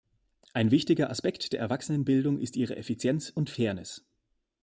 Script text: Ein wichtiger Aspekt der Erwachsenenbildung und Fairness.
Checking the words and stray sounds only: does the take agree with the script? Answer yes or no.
no